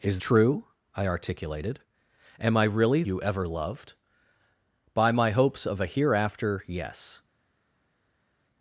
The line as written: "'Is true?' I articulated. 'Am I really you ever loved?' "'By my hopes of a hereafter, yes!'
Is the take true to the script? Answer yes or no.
yes